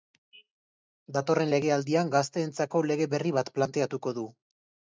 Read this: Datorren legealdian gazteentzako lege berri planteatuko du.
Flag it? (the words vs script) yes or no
yes